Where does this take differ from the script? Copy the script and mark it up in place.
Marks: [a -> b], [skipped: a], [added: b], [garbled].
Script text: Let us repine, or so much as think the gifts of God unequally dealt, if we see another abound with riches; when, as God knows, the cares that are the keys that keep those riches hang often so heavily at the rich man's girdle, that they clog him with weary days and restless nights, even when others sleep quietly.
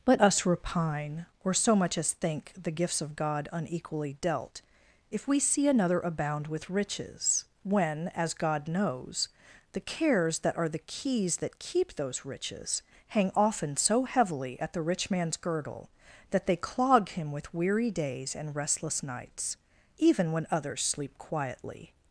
Let us repine, or so much as think the gifts of God unequally dealt, if we see another abound with riches; when, as God knows, the cares that are the keys that keep those riches hang often so heavily at the rich man's girdle, that they clog him with weary days and restless nights, even when others sleep quietly.